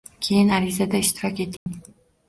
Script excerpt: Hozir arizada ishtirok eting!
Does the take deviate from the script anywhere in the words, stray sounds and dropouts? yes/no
yes